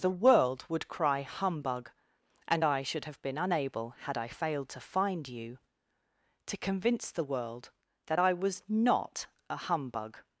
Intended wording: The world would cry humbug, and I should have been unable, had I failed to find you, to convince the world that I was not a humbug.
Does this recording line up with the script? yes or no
yes